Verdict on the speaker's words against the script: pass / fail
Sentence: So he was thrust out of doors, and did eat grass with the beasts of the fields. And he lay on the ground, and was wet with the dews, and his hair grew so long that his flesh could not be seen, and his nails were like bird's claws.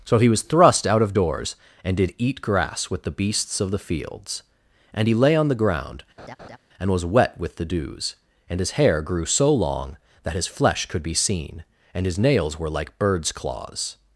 fail